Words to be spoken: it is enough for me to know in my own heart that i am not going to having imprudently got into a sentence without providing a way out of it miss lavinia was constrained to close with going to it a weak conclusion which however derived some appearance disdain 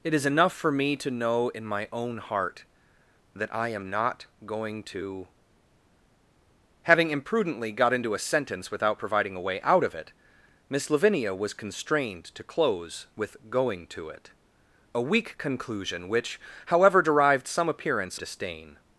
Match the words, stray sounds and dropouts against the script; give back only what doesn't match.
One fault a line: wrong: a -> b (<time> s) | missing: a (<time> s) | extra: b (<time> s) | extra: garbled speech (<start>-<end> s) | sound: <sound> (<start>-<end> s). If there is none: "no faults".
no faults